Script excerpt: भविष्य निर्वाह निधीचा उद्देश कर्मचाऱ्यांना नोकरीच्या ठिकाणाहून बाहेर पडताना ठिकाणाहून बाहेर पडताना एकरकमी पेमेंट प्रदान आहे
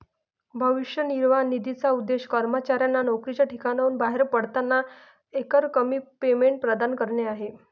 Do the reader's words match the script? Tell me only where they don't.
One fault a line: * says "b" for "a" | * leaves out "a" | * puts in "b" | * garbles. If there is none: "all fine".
* leaves out "ठिकाणाहून बाहेर पडताना"
* puts in "करणे"